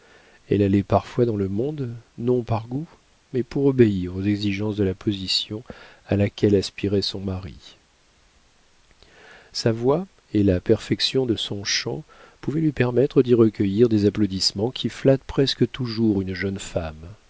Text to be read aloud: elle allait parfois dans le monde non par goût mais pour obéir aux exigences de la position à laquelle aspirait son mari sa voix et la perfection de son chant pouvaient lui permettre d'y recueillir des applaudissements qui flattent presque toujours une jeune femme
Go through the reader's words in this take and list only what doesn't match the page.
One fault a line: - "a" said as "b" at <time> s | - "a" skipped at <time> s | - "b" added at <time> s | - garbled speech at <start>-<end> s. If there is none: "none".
none